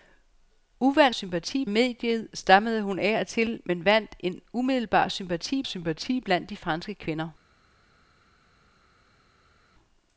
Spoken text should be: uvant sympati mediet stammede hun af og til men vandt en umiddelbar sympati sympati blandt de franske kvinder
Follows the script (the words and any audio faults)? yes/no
yes